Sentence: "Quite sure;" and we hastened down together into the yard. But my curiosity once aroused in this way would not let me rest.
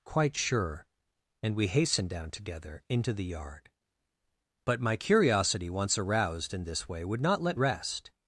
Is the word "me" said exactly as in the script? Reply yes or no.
no